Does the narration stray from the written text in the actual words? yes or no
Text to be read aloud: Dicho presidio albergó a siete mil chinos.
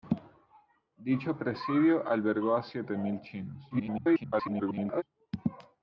yes